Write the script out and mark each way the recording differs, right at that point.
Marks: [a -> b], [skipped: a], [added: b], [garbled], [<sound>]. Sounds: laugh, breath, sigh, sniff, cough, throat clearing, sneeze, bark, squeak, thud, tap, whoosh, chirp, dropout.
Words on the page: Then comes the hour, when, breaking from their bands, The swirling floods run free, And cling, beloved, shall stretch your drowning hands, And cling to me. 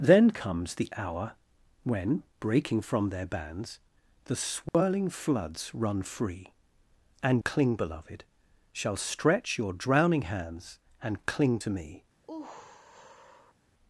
Then comes the hour, when, breaking from their bands, The swirling [dropout] floods run free, And cling, beloved, shall stretch your drowning hands, And cling to me. [sigh]